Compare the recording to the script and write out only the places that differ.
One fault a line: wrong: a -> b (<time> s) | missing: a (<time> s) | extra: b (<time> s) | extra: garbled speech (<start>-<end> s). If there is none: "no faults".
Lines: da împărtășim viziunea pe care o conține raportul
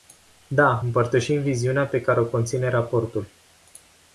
no faults